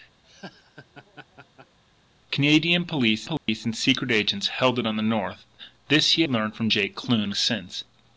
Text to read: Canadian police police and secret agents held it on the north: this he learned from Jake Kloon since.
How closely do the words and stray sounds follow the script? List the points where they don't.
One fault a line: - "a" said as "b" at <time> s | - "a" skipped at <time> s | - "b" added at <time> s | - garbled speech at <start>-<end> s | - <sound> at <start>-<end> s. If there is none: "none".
- laugh at 0.2-1.8 s
- dropout at 3.4-3.5 s